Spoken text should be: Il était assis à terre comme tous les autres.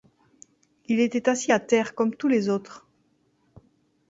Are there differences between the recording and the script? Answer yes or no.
no